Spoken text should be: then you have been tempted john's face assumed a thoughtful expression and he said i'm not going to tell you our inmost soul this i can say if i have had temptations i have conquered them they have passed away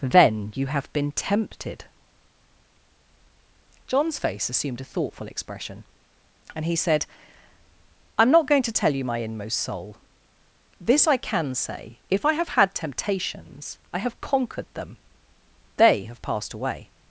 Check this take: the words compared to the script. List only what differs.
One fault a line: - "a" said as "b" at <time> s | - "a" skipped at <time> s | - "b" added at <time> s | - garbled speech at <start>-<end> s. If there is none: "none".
- "our" said as "my" at 9.0 s